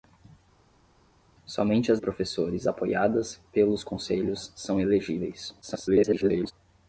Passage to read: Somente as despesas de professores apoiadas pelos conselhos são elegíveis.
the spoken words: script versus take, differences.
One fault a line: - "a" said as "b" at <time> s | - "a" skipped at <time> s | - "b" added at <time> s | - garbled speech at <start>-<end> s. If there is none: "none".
- "despesas de" skipped at 2.0 s
- garbled speech at 5.6-6.5 s